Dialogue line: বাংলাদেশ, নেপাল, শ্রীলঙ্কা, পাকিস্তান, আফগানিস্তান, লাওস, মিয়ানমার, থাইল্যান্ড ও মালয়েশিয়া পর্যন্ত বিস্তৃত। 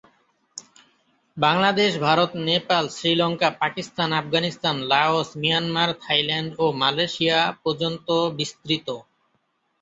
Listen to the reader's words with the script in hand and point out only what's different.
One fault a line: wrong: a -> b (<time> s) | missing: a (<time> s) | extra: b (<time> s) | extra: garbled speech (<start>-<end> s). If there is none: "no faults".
extra: ভারত (2.0 s)